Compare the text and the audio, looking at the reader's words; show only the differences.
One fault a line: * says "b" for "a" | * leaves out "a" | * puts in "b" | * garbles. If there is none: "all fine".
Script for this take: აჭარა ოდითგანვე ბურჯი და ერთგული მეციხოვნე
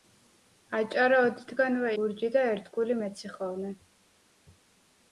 all fine